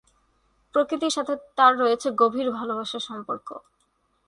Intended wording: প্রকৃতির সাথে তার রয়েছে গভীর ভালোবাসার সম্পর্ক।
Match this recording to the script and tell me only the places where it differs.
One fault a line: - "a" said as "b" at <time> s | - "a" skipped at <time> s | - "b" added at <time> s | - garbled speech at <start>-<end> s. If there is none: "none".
none